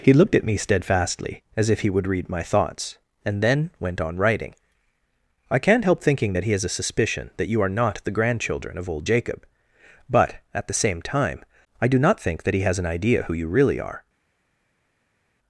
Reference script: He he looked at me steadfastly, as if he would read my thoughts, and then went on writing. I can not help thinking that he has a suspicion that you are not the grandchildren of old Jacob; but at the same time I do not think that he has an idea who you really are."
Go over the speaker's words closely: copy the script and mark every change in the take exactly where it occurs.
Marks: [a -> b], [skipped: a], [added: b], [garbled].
He [skipped: he] looked at me steadfastly, as if he would read my thoughts, and then went on writing. I can not help thinking that he has a suspicion that you are not the grandchildren of old Jacob; but at the same time I do not think that he has an idea who you really are."